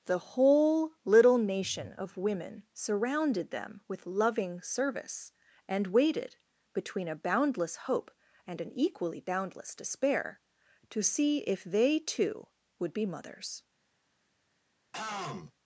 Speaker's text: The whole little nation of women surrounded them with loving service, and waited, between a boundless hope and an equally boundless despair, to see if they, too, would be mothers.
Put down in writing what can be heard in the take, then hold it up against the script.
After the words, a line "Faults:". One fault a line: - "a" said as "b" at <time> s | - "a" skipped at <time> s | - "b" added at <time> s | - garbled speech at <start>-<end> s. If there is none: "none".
The whole little nation of women surrounded them with loving service, and waited, between a boundless hope and an equally boundless despair, to see if they, too, would be mothers.
Faults:
none